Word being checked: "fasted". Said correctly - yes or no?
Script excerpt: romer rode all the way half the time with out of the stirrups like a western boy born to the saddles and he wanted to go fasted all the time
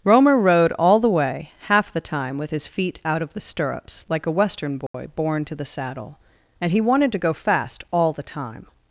no